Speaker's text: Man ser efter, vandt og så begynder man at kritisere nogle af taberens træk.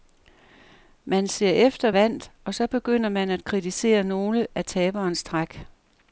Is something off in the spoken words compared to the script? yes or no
no